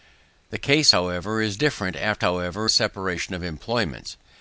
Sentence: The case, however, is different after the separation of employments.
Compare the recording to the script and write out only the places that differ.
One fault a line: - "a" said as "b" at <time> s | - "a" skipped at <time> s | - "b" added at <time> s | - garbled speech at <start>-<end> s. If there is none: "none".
- "the" said as "however" at 2.2 s